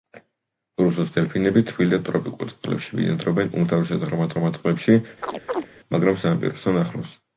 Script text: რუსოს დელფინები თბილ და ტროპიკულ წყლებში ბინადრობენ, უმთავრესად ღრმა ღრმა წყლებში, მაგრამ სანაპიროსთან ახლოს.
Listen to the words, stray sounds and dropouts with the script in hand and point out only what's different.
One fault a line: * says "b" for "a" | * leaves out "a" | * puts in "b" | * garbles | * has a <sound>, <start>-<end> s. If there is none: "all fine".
* has a chirp, 5.2-5.7 s